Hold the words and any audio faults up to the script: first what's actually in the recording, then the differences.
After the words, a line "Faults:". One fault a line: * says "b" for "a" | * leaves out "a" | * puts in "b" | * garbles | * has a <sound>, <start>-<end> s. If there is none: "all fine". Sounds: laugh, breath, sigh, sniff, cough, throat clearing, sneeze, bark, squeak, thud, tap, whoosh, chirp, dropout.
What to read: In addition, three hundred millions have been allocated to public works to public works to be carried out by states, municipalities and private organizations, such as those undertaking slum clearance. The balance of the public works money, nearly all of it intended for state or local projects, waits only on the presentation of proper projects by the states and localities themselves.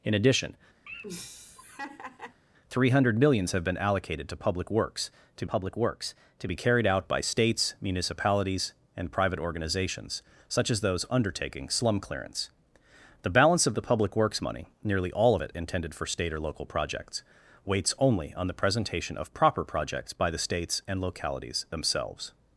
In addition, three hundred millions have been allocated to public works to public works to be carried out by states, municipalities and private organizations, such as those undertaking slum clearance. The balance of the public works money, nearly all of it intended for state or local projects, waits only on the presentation of proper projects by the states and localities themselves.
Faults:
* has a laugh, 0.9-2.4 s